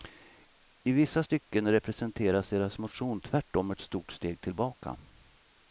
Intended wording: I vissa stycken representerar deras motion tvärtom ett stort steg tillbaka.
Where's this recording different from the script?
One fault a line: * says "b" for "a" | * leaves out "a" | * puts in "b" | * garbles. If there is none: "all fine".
all fine